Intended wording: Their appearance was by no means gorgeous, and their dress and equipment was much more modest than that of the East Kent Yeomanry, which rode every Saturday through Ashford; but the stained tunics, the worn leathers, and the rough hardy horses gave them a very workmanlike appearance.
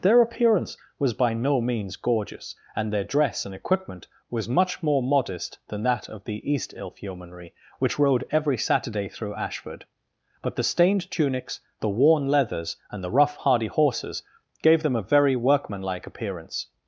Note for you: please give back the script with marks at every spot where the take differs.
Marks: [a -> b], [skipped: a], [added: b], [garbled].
Their appearance was by no means gorgeous, and their dress and equipment was much more modest than that of the East [Kent -> Ilf] Yeomanry, which rode every Saturday through Ashford; but the stained tunics, the worn leathers, and the rough hardy horses gave them a very workmanlike appearance.